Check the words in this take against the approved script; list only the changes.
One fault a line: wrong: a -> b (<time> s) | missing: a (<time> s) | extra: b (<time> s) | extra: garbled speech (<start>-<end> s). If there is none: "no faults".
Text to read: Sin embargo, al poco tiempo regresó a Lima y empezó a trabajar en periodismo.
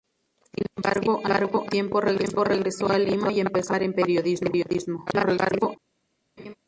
extra: garbled speech (5.1-5.8 s)